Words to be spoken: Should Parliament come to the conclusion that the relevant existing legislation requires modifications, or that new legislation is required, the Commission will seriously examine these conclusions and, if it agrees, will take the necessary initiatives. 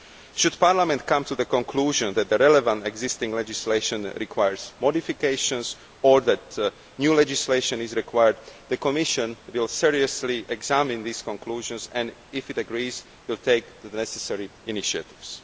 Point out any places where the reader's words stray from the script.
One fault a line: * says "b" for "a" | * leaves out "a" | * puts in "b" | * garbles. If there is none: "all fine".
all fine